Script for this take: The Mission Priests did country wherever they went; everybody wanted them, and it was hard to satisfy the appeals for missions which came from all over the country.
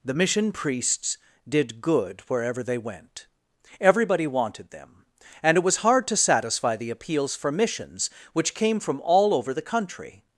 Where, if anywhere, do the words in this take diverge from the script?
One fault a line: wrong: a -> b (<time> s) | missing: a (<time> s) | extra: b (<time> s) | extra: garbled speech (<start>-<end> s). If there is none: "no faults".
wrong: country -> good (1.8 s)